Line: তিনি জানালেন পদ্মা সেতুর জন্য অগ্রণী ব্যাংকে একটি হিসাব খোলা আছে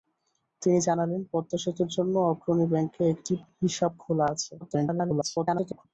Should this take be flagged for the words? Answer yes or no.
yes